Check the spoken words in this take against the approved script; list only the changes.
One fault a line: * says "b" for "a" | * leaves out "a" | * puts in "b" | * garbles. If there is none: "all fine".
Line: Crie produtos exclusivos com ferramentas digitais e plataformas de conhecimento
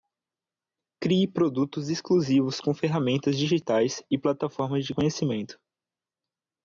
all fine